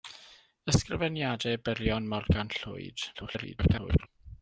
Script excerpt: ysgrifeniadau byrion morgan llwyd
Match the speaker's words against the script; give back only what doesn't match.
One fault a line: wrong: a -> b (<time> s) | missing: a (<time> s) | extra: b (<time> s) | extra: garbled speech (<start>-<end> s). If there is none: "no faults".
extra: garbled speech (3.1-4.1 s)